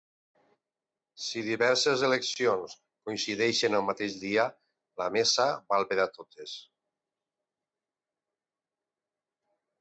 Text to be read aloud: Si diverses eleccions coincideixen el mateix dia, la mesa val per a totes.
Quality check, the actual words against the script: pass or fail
pass